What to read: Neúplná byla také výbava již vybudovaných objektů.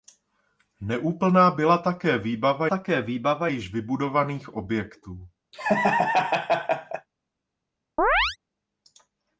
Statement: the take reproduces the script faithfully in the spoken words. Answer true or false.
false